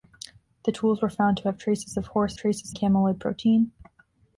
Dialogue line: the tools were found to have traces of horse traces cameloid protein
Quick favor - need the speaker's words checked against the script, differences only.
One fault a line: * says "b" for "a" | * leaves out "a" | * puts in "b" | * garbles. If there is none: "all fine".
all fine